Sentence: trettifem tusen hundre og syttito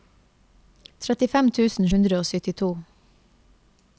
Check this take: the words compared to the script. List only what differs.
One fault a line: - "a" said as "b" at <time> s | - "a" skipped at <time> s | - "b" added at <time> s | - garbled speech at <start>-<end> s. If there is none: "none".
none